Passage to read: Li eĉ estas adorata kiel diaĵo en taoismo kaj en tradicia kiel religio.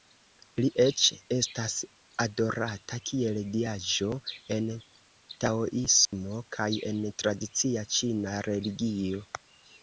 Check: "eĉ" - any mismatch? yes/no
no